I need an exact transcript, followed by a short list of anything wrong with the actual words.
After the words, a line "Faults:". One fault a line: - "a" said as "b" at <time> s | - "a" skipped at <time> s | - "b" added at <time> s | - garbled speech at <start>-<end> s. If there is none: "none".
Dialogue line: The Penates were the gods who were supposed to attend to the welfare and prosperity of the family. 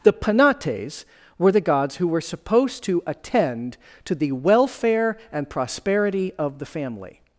The Penates were the gods who were supposed to attend to the welfare and prosperity of the family.
Faults:
none